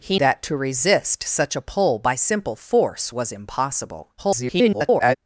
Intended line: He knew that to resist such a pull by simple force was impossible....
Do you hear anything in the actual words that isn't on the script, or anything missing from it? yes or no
yes